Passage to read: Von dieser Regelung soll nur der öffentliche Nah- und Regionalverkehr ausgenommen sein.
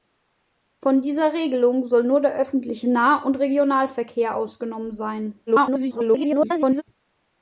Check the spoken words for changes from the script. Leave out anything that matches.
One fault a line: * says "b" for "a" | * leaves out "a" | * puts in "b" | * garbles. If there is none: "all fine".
* garbles